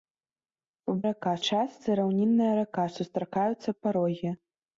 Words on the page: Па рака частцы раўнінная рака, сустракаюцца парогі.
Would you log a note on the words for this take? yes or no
no